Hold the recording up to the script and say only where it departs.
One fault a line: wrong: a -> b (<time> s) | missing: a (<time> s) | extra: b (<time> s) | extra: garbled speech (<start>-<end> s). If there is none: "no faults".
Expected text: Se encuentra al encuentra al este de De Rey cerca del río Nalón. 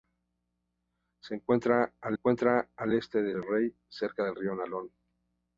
no faults